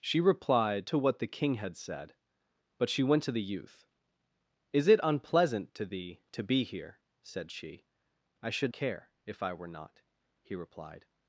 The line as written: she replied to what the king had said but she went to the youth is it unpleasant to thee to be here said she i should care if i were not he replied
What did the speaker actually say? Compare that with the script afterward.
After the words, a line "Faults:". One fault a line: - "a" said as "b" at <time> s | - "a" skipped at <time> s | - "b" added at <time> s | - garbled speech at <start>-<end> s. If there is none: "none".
she replied to what the king had said but she went to the youth is it unpleasant to thee to be here said she i should care if i were not he replied
Faults:
none